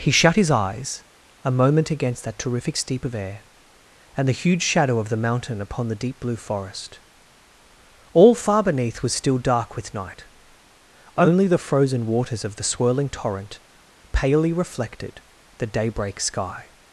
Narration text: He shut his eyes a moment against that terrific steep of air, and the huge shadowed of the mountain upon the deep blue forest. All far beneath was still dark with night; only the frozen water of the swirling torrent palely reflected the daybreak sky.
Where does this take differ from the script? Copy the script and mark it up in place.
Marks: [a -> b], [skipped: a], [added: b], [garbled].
He shut his eyes a moment against that terrific steep of air, and the huge [shadowed -> shadow] of the mountain upon the deep blue forest. All far beneath was still dark with night; only the frozen [water -> waters] of the swirling torrent palely reflected the daybreak sky.